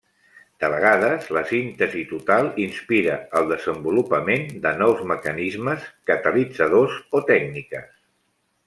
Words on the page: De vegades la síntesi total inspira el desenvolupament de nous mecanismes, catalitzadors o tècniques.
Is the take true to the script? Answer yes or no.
yes